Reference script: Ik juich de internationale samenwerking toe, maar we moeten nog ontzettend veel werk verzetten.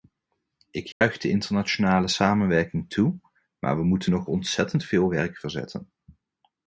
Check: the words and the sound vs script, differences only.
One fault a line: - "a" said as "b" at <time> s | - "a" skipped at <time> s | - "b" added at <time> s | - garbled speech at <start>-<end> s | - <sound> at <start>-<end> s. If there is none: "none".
- dropout at 0.9-1.0 s